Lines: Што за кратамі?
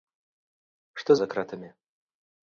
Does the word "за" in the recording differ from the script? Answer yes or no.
no